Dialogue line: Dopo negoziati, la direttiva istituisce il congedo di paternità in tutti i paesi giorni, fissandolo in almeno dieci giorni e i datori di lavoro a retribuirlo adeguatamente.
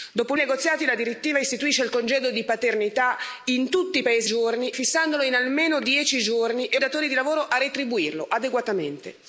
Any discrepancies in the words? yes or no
no